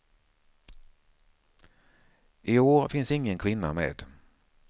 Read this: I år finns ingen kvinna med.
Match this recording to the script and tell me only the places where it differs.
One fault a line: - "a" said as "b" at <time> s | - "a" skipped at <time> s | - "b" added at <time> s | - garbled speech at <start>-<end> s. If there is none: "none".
none